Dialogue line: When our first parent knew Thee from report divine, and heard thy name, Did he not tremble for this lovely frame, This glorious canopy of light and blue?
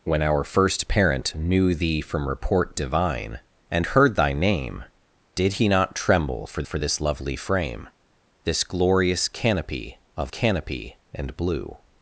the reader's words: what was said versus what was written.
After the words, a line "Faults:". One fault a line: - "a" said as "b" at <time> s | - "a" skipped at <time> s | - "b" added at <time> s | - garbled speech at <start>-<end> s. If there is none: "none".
When our first parent knew Thee from report divine, and heard thy name, Did he not tremble for for this lovely frame, This glorious canopy of canopy and blue?
Faults:
- "for" added at 6.6 s
- "light" said as "canopy" at 10.3 s